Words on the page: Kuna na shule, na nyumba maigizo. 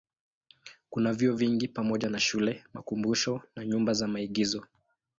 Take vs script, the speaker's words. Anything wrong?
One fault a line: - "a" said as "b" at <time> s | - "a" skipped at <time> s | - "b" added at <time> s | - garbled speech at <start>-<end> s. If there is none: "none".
- "vyuo vingi pamoja" added at 1.1 s
- "makumbusho" added at 2.7 s
- "za" added at 3.9 s